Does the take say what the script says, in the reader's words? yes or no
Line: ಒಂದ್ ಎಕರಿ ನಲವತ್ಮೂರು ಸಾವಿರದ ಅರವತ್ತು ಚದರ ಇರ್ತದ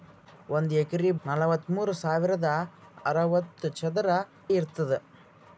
yes